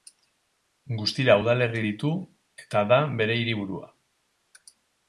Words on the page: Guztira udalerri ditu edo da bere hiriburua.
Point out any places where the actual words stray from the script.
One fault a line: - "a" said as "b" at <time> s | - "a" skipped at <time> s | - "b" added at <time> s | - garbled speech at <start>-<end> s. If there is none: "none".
- "edo" said as "eta" at 2.6 s